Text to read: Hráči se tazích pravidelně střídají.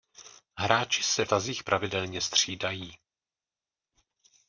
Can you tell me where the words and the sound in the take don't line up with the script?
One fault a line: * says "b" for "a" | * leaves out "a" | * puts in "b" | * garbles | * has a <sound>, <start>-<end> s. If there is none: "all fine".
all fine